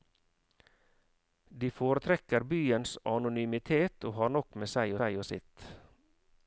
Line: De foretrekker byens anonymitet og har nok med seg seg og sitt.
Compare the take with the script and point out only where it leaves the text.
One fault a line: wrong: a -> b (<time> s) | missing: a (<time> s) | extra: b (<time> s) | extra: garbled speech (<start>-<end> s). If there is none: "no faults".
no faults